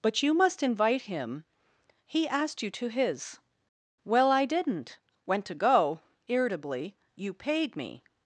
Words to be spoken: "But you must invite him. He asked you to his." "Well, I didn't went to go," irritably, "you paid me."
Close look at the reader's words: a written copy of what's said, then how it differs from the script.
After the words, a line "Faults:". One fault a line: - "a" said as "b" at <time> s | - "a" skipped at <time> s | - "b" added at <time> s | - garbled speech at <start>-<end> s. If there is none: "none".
"But you must invite him. He asked you to his." "Well, I didn't went to go," irritably, "you paid me."
Faults:
none